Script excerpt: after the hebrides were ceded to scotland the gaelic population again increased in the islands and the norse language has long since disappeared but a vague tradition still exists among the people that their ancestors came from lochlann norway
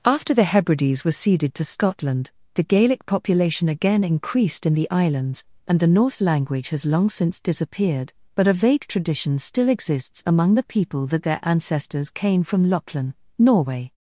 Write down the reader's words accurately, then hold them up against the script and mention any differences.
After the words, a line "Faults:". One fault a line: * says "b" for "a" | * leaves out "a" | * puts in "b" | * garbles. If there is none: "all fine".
after the hebrides were ceded to scotland the gaelic population again increased in the islands and the norse language has long since disappeared but a vague tradition still exists among the people that their ancestors came from lochlann norway
Faults:
all fine